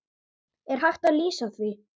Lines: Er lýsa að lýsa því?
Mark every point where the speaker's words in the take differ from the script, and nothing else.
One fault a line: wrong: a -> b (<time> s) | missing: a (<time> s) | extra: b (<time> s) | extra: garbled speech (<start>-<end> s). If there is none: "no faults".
wrong: lýsa -> hægt (0.8 s)